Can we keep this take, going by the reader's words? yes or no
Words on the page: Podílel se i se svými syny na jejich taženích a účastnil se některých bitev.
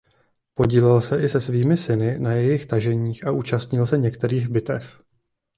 yes